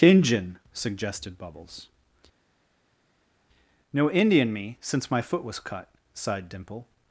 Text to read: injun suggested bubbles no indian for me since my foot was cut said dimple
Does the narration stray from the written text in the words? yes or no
yes